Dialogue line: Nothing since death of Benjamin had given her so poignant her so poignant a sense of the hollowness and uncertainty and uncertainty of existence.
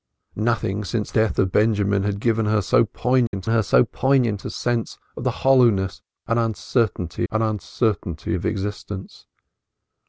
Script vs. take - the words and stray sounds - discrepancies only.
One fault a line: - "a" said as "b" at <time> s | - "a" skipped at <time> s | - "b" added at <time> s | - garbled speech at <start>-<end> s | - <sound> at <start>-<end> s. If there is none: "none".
- dropout at 3.3-3.3 s